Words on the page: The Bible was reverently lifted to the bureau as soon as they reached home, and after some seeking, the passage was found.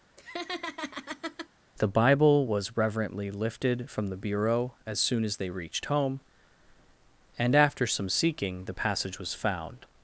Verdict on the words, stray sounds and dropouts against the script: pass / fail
fail